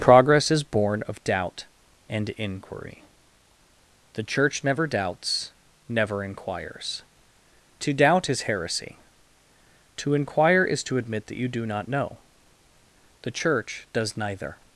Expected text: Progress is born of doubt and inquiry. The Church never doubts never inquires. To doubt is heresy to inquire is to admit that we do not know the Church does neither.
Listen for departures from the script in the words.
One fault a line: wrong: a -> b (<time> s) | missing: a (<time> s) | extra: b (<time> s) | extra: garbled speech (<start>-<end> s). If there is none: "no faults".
wrong: we -> you (11.4 s)